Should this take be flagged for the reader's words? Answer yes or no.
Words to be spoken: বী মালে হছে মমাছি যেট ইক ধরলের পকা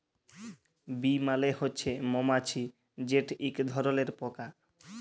no